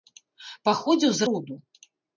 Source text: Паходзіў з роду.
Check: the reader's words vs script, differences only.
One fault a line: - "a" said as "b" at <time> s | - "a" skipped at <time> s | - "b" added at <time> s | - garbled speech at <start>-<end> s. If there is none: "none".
none